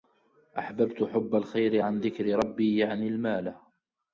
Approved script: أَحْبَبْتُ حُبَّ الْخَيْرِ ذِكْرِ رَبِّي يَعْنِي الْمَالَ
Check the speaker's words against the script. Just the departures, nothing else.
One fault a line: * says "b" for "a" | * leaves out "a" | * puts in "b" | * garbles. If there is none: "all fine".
* puts in "عَنْ"